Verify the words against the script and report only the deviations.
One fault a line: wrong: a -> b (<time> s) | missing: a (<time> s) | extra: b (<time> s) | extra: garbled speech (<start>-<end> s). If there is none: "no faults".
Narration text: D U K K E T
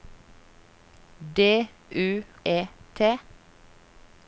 missing: K K (2.2 s)